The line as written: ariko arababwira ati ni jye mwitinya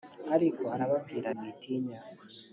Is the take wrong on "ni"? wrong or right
wrong